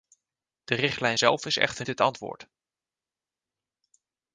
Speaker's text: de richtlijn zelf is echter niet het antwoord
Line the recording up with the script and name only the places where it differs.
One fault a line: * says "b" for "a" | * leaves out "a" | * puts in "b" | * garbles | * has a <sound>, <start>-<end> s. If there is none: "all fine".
* leaves out "niet"